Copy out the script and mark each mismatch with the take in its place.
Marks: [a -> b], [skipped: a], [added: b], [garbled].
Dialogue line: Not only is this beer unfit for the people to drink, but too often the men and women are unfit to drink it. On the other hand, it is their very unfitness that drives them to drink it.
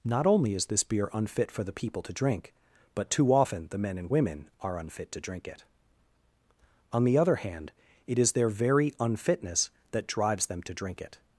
Not only is this beer unfit for the people to drink, but too often the men and women are unfit to drink it. On the other hand, it is their very unfitness that drives them to drink it.